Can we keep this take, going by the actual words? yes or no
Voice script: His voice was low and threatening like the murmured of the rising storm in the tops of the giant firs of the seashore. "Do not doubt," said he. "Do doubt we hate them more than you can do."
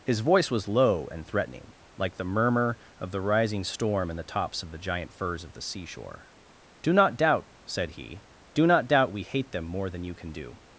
no